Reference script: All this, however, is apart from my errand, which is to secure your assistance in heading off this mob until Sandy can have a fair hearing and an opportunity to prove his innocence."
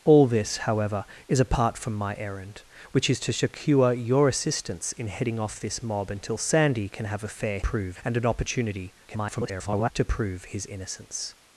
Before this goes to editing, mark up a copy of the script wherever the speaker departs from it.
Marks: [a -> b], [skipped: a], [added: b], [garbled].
All this, however, is apart from my errand, which is to secure your assistance in heading off this mob until Sandy can have a fair [hearing -> prove] and an opportunity [garbled] to prove his innocence."